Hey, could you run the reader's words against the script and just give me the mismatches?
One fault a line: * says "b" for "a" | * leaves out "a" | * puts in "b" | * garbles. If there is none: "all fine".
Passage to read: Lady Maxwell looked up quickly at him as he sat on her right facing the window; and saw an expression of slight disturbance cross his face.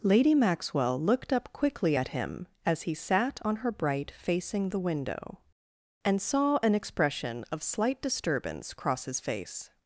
* says "bright" for "right"